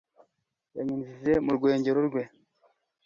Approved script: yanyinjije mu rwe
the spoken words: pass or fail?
fail